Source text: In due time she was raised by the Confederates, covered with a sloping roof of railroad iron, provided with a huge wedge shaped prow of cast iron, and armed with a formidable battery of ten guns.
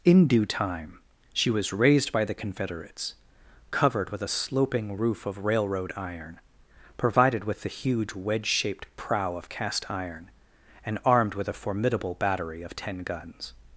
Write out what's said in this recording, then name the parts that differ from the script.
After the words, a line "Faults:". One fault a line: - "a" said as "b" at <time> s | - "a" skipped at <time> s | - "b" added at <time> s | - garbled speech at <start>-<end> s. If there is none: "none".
In due time she was raised by the Confederates, covered with a sloping roof of railroad iron, provided with the huge wedge shaped prow of cast iron, and armed with a formidable battery of ten guns.
Faults:
- "a" said as "the" at 7.6 s